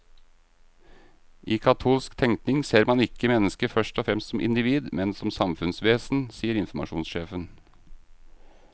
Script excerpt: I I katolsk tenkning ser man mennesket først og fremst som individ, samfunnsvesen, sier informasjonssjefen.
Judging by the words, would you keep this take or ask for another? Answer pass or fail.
fail